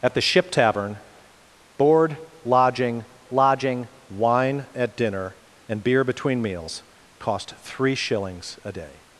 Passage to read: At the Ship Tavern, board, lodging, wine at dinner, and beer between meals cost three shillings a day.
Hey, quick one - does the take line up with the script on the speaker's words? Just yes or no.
no